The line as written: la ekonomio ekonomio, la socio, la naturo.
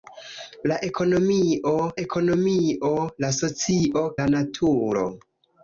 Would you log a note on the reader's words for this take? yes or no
no